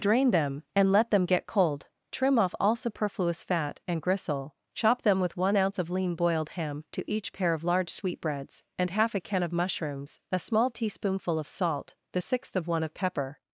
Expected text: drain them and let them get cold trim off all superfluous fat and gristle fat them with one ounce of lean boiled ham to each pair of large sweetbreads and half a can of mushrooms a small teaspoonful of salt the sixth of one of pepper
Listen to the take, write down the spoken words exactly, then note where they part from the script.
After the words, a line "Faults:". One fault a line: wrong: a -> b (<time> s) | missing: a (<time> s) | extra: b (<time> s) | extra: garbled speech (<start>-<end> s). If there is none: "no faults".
drain them and let them get cold trim off all superfluous fat and gristle chop them with one ounce of lean boiled ham to each pair of large sweetbreads and half a can of mushrooms a small teaspoonful of salt the sixth of one of pepper
Faults:
wrong: fat -> chop (4.7 s)